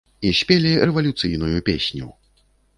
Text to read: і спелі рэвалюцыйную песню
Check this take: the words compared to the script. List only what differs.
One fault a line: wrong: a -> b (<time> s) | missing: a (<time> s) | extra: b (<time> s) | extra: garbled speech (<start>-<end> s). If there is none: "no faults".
no faults